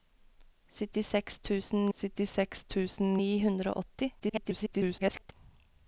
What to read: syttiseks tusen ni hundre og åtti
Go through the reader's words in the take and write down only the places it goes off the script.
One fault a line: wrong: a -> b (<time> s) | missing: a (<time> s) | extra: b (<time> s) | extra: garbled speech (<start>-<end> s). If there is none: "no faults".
extra: syttiseks tusen (2.0 s)
extra: garbled speech (4.2-5.3 s)